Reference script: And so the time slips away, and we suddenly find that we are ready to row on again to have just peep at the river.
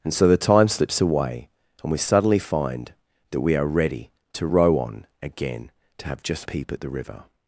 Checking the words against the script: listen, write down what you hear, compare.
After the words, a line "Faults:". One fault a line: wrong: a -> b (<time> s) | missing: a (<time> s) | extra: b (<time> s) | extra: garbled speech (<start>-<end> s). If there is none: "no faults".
And so the time slips away, and we suddenly find that we are ready to row on again to have just peep at the river.
Faults:
no faults